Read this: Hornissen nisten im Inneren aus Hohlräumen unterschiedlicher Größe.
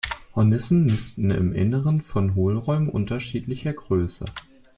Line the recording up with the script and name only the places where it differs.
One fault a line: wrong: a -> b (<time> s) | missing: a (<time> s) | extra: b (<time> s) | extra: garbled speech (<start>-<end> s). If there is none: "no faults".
wrong: aus -> von (2.0 s)